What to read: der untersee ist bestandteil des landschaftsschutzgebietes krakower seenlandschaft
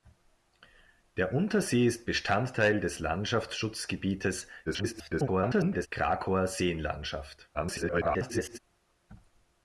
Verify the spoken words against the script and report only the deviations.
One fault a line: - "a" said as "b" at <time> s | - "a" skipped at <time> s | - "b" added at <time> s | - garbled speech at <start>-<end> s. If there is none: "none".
- garbled speech at 4.7-5.9 s
- garbled speech at 7.5-8.6 s